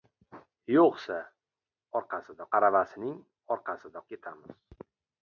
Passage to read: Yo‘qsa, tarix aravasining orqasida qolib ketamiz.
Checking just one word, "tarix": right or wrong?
wrong